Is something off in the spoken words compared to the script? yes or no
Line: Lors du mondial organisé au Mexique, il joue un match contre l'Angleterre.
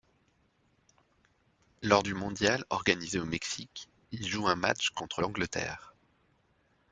no